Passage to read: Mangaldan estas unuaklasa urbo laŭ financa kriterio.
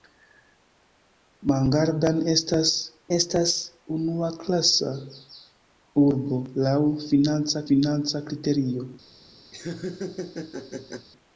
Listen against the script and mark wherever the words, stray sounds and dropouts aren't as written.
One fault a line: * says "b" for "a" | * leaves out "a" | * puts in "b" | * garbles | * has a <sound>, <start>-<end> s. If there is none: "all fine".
* puts in "estas"
* puts in "financa"
* has a laugh, 9.5-11.1 s